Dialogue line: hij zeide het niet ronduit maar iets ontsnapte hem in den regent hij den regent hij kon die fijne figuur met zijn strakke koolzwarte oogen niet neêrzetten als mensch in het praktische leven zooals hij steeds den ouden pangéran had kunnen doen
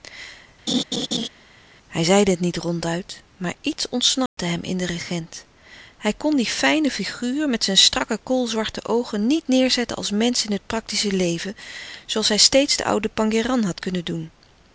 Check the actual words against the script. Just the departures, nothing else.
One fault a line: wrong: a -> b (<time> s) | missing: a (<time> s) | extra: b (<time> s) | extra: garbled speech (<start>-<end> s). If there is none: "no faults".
missing: den regent hij (6.1 s)